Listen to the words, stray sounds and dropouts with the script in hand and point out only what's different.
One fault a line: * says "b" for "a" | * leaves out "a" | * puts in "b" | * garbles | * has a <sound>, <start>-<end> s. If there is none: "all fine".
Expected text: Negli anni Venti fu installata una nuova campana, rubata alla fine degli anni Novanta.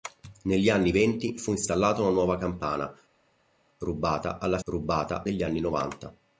* says "rubata" for "fine"